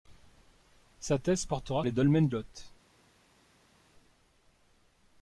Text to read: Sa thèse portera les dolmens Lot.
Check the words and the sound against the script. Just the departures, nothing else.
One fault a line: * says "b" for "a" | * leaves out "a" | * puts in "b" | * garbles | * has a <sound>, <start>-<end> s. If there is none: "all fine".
all fine